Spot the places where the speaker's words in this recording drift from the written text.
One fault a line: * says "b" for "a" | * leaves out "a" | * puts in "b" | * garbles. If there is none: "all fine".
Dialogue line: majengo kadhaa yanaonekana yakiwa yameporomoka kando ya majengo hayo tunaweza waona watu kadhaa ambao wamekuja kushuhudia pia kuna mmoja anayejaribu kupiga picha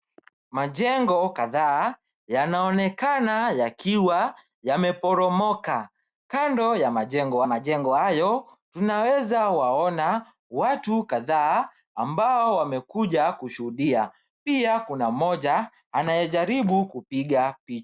* puts in "majengo"